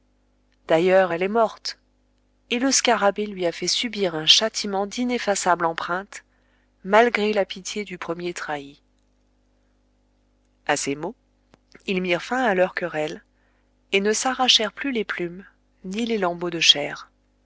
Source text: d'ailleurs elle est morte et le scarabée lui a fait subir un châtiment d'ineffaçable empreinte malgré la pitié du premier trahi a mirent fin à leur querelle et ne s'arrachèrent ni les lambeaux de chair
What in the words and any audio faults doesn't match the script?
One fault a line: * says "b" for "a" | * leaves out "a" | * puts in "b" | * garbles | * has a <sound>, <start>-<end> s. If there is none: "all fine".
* puts in "ces mots ils"
* puts in "plus les plumes"